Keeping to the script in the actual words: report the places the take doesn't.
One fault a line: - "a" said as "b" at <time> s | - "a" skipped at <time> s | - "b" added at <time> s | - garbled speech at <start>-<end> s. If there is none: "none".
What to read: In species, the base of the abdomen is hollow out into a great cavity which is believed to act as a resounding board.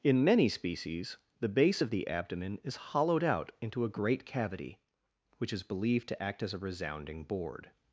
- "many" added at 0.2 s
- "hollow" said as "hollowed" at 2.8 s